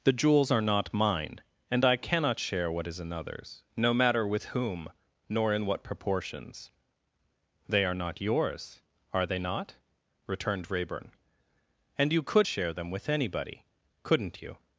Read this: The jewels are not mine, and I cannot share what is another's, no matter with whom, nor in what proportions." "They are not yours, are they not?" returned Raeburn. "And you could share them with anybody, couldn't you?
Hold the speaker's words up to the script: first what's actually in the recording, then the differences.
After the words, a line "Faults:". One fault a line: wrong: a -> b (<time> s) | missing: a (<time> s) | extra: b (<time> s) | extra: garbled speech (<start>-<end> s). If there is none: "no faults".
The jewels are not mine, and I cannot share what is another's, no matter with whom, nor in what proportions." "They are not yours, are they not?" returned Raeburn. "And you could share them with anybody, couldn't you?
Faults:
no faults